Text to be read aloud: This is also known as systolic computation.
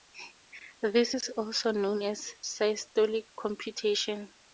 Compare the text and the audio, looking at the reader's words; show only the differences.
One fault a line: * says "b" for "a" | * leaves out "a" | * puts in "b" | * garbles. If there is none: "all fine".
all fine